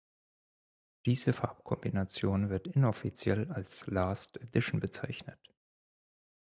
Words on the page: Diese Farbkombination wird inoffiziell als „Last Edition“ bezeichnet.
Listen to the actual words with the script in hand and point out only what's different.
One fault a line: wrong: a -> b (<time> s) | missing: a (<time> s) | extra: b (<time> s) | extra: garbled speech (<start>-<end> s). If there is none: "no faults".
no faults